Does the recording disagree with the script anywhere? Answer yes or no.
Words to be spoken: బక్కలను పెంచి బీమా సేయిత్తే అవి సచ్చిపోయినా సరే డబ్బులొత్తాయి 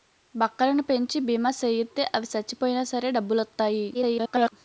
yes